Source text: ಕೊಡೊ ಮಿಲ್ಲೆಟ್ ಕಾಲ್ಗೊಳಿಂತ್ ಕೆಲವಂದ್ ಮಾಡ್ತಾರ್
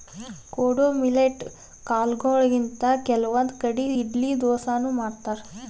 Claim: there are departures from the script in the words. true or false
true